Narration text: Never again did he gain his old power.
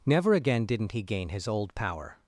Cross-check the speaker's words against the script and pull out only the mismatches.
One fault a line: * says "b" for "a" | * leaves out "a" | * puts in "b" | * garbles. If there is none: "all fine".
* says "didn't" for "did"